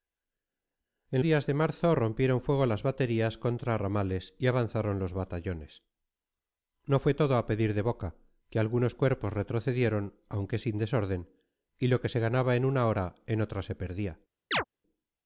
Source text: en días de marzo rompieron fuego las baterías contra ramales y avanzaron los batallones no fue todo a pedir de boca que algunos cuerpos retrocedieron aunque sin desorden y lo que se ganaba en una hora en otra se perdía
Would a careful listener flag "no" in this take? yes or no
no